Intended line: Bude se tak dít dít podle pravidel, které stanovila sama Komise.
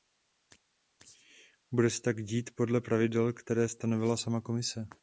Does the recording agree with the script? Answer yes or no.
no